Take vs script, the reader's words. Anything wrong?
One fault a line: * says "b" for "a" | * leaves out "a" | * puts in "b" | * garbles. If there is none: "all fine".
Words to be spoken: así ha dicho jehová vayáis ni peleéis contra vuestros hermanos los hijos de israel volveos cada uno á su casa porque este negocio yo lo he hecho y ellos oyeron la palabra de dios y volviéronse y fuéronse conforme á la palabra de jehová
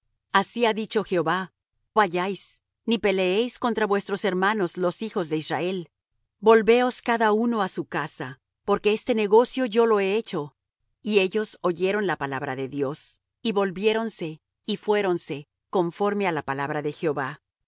all fine